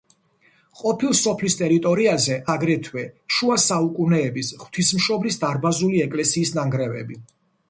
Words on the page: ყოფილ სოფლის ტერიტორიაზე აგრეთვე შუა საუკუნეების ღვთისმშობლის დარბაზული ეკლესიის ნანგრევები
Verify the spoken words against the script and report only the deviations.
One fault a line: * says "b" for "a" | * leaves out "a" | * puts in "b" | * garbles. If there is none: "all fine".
all fine